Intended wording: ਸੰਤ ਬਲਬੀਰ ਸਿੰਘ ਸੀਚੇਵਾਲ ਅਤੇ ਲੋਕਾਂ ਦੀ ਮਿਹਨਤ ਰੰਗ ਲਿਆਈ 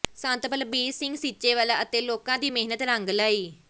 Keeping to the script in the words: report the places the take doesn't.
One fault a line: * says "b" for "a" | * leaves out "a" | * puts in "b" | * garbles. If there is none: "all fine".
all fine